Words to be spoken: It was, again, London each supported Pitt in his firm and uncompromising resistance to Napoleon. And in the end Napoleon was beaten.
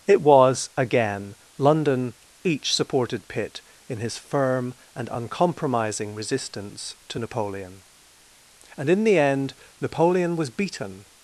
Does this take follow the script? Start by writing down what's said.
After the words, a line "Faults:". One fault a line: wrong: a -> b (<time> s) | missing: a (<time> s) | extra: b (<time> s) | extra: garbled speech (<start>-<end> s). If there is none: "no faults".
It was, again, London each supported Pitt in his firm and uncompromising resistance to Napoleon. And in the end Napoleon was beaten.
Faults:
no faults